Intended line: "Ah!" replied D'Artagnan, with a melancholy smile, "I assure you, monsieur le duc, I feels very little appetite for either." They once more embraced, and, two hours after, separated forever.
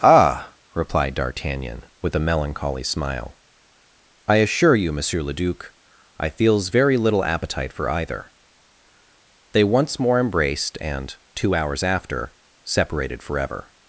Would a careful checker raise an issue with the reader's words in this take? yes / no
no